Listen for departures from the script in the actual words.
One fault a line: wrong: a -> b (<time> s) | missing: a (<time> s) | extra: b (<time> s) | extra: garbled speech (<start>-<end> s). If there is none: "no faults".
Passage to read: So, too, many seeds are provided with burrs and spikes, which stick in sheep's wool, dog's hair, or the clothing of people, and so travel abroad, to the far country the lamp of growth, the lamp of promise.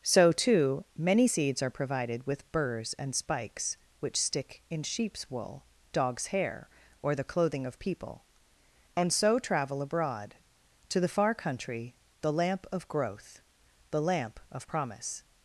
no faults